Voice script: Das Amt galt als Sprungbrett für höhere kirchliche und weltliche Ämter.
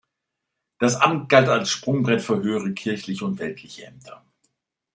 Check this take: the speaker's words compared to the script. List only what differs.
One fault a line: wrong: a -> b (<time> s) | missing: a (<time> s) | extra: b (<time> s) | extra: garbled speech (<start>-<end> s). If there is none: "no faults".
no faults